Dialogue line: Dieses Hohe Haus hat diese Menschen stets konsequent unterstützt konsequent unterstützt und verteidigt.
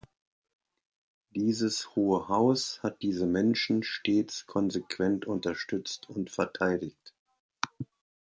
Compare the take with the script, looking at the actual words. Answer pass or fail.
fail